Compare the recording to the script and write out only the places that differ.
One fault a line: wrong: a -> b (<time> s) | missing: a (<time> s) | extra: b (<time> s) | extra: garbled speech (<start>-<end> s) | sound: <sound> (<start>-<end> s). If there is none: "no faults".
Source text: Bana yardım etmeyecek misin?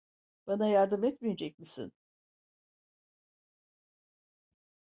no faults